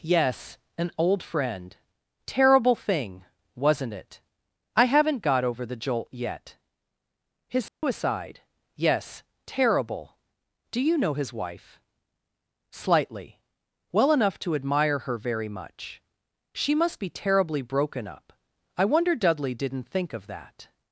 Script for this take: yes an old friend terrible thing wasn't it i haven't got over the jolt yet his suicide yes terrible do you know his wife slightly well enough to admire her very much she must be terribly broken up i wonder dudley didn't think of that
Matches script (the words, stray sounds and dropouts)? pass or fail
fail